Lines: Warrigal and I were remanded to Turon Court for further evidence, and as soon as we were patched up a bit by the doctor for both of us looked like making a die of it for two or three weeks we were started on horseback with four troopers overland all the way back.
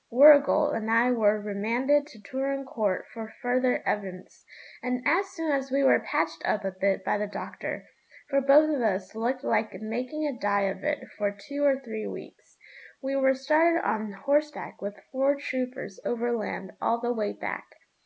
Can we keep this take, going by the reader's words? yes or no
yes